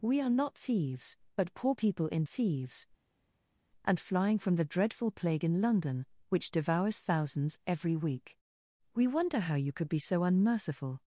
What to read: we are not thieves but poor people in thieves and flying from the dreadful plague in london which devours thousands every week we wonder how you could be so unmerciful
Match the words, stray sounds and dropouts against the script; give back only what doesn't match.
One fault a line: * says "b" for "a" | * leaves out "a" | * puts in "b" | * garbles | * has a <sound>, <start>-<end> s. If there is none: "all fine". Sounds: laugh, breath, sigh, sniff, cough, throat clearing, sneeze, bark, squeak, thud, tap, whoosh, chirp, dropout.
all fine